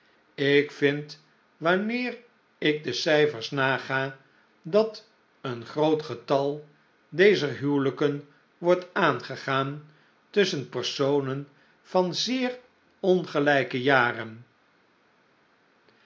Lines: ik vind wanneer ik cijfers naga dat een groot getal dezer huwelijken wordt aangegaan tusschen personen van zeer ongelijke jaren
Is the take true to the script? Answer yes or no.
no